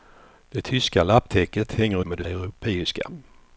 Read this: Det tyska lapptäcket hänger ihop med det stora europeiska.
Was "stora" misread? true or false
true